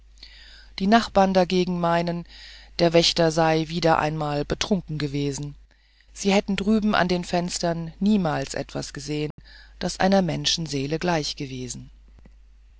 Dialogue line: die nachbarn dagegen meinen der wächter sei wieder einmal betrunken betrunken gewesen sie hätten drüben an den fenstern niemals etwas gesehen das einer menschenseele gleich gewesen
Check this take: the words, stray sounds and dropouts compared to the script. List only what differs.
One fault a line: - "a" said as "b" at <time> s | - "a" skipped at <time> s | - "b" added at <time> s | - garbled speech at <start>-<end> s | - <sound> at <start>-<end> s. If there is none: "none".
- "betrunken" skipped at 5.0 s
- dropout at 9.3-9.4 s